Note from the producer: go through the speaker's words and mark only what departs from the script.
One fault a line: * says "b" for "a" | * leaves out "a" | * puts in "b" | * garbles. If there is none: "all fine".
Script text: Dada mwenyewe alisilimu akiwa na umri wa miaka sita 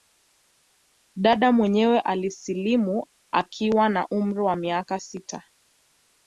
all fine